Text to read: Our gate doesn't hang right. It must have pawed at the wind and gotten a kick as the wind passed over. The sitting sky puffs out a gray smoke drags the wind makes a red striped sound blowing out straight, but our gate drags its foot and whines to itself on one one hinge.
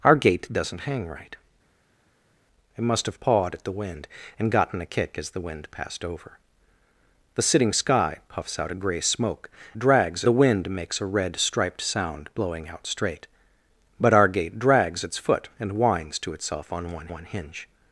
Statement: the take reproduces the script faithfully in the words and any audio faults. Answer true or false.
true